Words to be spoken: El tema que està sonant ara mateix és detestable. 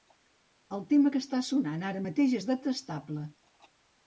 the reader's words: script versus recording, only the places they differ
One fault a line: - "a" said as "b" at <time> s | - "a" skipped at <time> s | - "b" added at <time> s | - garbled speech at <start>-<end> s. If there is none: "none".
none